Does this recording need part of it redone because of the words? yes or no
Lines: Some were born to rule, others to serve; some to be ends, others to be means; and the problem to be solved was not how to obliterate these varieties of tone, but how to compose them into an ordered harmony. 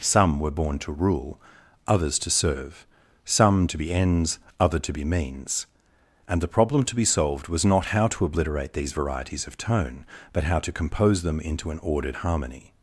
yes